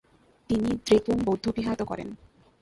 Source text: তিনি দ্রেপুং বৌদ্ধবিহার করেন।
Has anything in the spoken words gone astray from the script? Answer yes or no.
no